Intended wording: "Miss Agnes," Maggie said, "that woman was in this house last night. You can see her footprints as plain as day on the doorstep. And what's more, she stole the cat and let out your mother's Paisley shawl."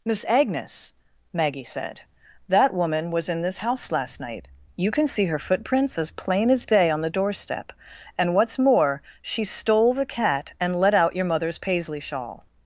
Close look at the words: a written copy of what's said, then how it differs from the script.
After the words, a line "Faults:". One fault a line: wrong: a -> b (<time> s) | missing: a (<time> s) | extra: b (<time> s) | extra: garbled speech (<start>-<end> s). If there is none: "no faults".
"Miss Agnes," Maggie said, "that woman was in this house last night. You can see her footprints as plain as day on the doorstep. And what's more, she stole the cat and let out your mother's Paisley shawl."
Faults:
no faults